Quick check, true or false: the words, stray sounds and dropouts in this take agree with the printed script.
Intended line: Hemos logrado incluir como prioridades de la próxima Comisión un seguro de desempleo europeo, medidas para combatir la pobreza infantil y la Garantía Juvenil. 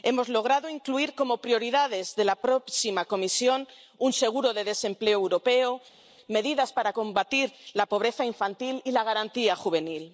true